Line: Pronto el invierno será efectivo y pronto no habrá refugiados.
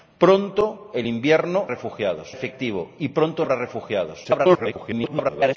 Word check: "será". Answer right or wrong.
wrong